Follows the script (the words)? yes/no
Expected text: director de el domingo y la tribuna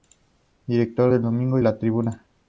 yes